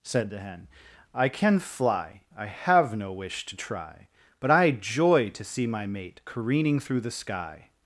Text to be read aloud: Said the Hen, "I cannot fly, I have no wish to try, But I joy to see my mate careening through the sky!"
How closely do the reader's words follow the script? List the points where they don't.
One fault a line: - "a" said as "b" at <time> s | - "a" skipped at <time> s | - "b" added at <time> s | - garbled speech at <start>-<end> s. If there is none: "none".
- "cannot" said as "can" at 1.3 s